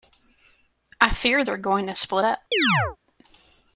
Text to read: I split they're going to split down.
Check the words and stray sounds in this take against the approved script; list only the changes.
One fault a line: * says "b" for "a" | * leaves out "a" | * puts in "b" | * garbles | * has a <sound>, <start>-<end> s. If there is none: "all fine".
* says "fear" for "split"
* says "up" for "down"
* has a chirp, 2.5-3.0 s